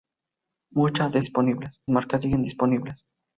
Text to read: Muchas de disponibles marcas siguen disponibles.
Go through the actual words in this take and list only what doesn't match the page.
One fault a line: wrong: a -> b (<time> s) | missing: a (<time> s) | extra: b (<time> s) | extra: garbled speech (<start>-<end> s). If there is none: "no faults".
no faults